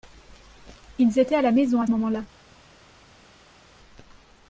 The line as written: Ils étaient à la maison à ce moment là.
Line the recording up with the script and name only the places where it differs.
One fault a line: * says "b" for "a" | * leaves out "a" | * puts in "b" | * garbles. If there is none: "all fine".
* leaves out "ce"